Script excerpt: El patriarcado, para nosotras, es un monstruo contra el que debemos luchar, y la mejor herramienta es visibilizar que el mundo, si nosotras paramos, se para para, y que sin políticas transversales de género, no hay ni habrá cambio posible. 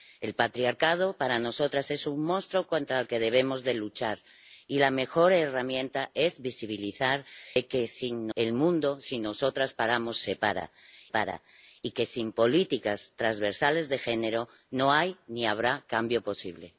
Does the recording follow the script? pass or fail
pass